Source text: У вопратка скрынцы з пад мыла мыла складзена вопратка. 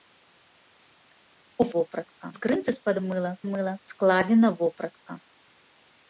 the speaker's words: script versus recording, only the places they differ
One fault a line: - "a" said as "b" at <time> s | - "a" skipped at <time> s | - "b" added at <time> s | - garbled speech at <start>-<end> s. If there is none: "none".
none